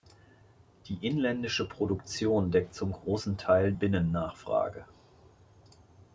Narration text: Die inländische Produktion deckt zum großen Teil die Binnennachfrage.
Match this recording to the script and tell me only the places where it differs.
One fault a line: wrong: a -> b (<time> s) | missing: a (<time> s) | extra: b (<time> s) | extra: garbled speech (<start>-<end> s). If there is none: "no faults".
missing: die (3.7 s)